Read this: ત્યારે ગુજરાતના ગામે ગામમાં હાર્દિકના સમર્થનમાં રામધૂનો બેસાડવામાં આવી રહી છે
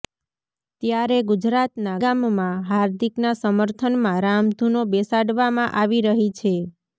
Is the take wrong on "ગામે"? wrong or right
wrong